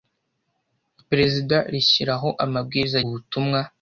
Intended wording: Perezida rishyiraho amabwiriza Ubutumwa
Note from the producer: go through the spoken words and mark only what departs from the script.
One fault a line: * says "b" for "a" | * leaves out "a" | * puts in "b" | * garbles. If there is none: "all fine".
all fine